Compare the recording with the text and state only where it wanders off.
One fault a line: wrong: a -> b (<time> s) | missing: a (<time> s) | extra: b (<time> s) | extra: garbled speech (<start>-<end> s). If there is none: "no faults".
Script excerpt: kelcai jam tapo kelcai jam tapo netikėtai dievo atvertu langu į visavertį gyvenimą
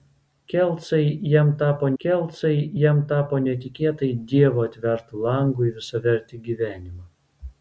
no faults